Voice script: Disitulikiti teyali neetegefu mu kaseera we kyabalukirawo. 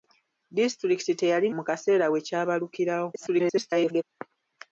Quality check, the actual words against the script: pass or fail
fail